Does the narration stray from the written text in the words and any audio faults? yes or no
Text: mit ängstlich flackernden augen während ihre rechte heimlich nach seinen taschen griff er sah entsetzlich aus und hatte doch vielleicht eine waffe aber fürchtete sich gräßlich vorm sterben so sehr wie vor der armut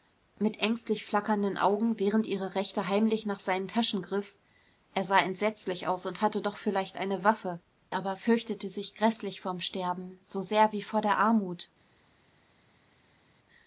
no